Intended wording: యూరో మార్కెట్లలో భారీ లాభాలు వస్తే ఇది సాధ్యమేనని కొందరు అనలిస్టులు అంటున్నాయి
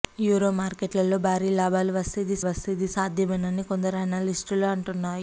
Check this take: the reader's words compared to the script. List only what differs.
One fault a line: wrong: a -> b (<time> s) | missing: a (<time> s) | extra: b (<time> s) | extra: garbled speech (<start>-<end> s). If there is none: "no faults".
extra: వస్తే ఇది (2.5 s)